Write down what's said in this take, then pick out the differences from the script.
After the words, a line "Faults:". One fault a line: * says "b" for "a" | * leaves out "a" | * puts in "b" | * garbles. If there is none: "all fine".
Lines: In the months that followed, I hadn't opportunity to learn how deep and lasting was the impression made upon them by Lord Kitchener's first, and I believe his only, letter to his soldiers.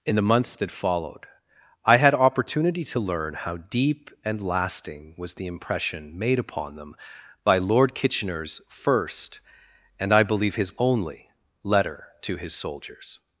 In the months that followed, I had opportunity to learn how deep and lasting was the impression made upon them by Lord Kitchener's first, and I believe his only, letter to his soldiers.
Faults:
* says "had" for "hadn't"